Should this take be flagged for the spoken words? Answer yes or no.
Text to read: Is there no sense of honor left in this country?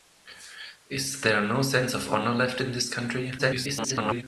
yes